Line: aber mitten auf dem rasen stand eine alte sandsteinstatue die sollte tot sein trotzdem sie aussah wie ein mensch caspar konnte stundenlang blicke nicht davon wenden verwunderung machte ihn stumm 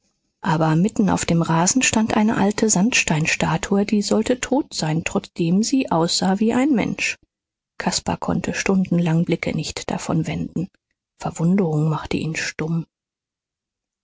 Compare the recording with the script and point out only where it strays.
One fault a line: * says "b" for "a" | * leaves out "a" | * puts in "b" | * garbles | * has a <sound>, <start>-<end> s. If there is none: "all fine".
all fine